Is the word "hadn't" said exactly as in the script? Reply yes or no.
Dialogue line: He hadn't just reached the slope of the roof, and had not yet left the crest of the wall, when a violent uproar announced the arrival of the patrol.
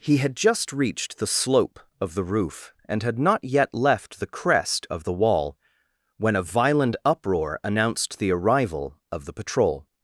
no